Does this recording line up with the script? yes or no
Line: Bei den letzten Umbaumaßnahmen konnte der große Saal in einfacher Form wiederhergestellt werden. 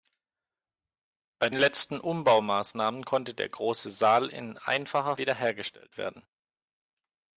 no